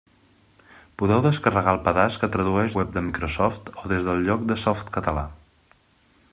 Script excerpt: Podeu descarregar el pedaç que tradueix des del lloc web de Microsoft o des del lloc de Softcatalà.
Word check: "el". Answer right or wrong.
right